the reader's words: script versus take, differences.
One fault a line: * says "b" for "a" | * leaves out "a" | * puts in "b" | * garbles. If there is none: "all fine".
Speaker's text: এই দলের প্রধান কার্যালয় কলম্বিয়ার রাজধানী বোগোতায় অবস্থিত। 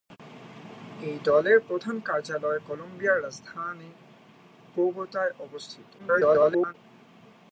* garbles